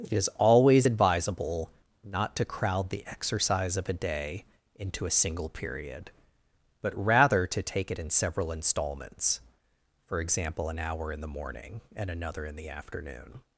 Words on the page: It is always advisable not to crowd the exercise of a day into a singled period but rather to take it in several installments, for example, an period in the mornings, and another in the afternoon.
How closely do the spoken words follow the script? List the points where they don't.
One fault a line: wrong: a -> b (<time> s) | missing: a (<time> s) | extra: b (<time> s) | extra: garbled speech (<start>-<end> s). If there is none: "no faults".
wrong: singled -> single (5.1 s)
wrong: period -> hour (10.8 s)
wrong: mornings -> morning (11.3 s)